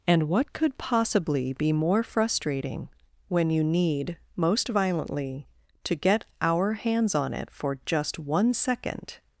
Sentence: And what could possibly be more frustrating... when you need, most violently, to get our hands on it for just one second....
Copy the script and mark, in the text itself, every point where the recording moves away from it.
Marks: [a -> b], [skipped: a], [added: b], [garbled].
And what could possibly be more frustrating... when you need, most violently, to get our hands on it for just one second....